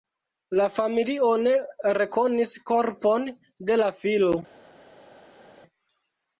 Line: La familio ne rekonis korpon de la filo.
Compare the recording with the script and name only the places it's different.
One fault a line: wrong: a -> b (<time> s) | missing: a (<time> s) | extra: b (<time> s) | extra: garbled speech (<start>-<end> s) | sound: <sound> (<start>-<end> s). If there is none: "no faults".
no faults